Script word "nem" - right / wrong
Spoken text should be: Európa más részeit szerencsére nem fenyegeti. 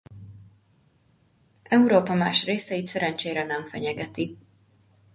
right